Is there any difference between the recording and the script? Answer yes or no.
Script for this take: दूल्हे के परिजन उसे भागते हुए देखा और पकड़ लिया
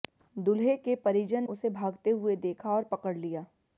no